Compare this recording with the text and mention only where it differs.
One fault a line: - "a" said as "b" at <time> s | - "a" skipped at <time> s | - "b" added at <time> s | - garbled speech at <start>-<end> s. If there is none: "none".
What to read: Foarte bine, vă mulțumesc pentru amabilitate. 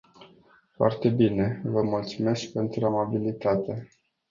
none